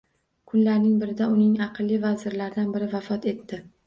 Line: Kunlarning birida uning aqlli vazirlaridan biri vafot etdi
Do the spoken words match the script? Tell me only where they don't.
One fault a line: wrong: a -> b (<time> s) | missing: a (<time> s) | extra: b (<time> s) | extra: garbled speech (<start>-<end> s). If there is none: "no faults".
no faults